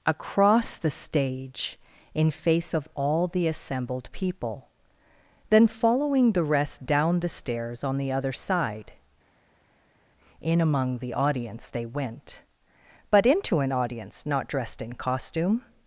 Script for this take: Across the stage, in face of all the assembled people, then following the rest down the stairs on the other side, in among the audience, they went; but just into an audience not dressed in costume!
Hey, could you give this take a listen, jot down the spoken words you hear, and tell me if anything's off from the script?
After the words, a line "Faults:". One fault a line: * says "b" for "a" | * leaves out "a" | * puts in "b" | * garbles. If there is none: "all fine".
Across the stage, in face of all the assembled people, then following the rest down the stairs on the other side, in among the audience, they went; but into an audience not dressed in costume!
Faults:
* leaves out "just"